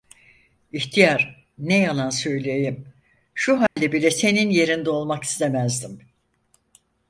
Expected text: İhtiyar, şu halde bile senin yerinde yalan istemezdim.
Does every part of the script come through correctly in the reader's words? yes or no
no